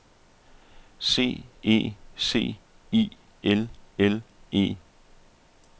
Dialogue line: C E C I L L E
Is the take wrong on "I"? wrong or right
right